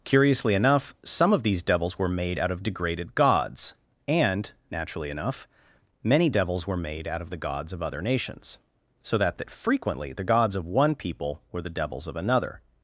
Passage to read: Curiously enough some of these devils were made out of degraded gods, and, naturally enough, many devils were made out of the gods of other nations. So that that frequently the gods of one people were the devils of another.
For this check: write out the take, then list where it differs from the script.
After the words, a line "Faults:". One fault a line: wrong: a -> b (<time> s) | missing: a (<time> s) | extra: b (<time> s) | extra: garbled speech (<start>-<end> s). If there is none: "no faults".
Curiously enough some of these devils were made out of degraded gods, and, naturally enough, many devils were made out of the gods of other nations. So that that frequently the gods of one people were the devils of another.
Faults:
no faults